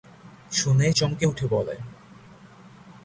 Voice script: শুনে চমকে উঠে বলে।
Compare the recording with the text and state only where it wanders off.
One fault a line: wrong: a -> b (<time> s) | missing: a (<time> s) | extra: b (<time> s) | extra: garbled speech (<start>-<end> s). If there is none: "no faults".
no faults